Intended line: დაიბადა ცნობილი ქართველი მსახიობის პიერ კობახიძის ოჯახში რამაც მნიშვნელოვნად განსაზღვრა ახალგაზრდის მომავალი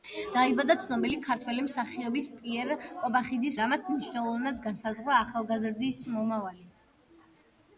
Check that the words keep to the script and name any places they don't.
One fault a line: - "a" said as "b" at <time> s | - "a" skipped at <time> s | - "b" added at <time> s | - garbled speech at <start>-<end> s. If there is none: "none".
- "ოჯახში" skipped at 3.6 s